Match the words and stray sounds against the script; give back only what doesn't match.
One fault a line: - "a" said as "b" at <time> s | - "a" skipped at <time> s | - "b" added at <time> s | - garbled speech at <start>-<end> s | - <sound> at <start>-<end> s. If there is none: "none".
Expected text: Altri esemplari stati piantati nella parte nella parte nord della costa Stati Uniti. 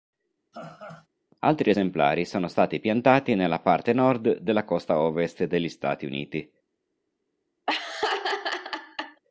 - laugh at 0.5-1.1 s
- "sono" added at 2.2 s
- "nella parte" skipped at 3.9 s
- "ovest degli" added at 5.0 s
- laugh at 7.7-9.2 s